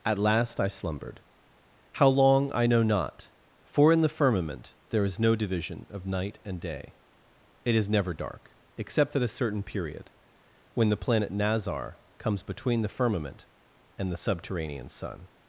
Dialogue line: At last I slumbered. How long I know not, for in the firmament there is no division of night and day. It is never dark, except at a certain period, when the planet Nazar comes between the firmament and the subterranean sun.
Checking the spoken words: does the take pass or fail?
pass